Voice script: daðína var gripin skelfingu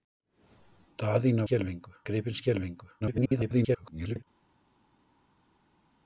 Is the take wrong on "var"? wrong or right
wrong